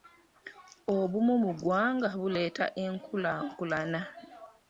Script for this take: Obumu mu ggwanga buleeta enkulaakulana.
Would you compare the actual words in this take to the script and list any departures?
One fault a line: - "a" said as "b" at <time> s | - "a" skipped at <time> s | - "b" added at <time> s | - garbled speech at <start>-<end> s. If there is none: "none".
none